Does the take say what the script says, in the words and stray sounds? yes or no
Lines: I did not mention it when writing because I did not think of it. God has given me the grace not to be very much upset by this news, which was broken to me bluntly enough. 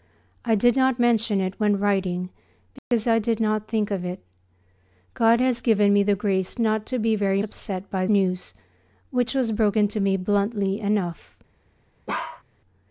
no